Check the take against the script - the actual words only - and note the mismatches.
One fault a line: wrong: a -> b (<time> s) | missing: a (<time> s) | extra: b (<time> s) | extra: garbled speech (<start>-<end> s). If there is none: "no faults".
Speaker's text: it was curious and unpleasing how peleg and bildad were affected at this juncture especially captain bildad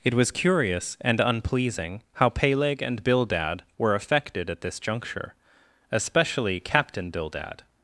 no faults